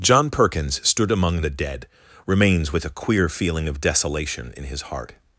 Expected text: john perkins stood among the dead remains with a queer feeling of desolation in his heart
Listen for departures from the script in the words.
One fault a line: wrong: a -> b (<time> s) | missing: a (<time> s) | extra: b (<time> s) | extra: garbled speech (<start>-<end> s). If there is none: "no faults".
no faults